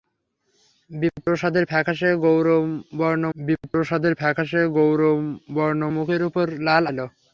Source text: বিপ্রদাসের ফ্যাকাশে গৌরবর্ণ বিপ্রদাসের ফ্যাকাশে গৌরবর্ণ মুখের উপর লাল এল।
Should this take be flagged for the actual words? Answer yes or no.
no